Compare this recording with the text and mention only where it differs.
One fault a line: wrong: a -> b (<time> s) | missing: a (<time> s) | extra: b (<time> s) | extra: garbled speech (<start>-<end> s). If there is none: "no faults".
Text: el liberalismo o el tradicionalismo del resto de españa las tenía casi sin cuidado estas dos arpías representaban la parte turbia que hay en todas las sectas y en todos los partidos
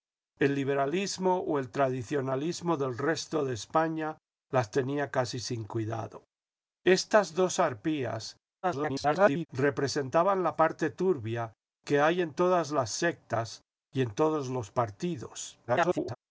extra: garbled speech (8.6-9.5 s)
extra: garbled speech (15.7-16.2 s)